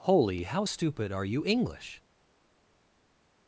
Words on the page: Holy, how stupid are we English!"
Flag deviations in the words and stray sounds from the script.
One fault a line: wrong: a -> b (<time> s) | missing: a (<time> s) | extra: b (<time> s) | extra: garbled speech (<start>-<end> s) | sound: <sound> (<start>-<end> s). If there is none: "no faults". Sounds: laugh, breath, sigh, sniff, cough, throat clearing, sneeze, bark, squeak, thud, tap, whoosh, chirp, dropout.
wrong: we -> you (1.2 s)